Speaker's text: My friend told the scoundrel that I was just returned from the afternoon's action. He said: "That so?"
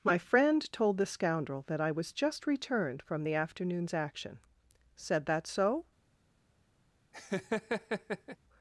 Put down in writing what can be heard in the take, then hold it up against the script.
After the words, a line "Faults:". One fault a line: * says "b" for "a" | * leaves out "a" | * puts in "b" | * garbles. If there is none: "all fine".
My friend told the scoundrel that I was just returned from the afternoon's action. said: "That so?"
Faults:
* leaves out "He"